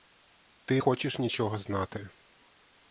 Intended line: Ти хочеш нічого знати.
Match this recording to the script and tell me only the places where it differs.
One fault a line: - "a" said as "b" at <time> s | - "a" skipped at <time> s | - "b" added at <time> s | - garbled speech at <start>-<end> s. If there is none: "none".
none